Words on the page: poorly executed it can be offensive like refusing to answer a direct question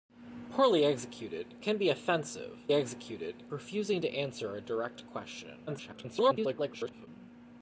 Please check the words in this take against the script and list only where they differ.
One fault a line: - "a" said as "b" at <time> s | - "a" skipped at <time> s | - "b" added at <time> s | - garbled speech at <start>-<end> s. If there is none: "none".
- "it" skipped at 1.6 s
- "like" said as "executed" at 2.7 s
- garbled speech at 5.7-7.1 s